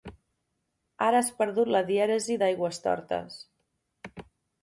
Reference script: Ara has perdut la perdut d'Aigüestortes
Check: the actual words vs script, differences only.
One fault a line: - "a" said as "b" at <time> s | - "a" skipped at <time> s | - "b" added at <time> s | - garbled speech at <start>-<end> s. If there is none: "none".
- "perdut" said as "dièresi" at 1.9 s